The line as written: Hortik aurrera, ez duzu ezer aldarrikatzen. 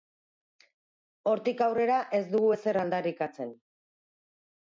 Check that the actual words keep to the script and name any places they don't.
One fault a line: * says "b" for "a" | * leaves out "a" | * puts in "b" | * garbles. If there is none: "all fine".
* says "dugu" for "duzu"